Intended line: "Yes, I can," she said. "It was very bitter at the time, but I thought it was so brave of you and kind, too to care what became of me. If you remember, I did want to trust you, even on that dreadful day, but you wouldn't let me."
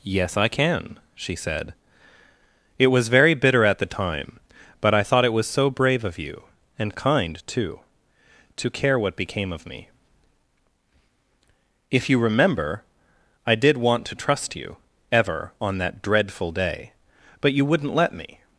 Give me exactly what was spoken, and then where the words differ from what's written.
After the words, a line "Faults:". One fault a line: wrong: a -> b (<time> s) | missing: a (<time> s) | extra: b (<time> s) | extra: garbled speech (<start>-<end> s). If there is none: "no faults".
"Yes, I can," she said. "It was very bitter at the time, but I thought it was so brave of you and kind, too to care what became of me. If you remember, I did want to trust you, ever on that dreadful day, but you wouldn't let me."
Faults:
wrong: even -> ever (15.1 s)